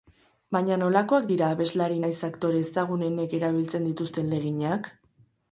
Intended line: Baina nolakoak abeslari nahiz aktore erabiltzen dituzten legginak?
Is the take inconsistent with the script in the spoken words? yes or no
yes